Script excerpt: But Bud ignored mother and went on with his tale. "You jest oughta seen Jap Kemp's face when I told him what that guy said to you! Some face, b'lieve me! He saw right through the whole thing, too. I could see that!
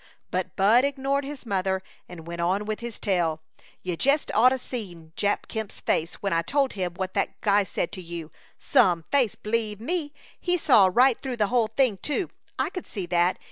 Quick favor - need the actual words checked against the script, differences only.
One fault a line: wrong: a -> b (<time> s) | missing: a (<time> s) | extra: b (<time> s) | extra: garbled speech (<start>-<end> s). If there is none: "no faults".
extra: his (1.2 s)